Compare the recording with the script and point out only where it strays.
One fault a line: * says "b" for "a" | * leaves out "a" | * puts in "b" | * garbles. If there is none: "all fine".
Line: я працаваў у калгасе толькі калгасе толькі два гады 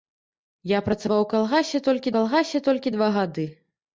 all fine